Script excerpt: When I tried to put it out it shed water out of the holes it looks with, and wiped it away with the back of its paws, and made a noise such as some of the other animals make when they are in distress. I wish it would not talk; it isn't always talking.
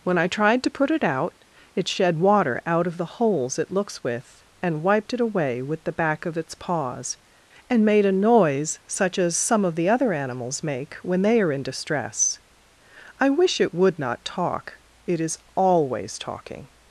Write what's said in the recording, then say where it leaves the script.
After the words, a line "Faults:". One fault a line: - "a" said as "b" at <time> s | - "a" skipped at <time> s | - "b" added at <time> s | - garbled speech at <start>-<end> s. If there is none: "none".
When I tried to put it out it shed water out of the holes it looks with, and wiped it away with the back of its paws, and made a noise such as some of the other animals make when they are in distress. I wish it would not talk; it is always talking.
Faults:
- "isn't" said as "is" at 15.2 s